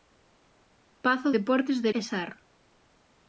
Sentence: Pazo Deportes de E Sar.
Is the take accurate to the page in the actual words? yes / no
yes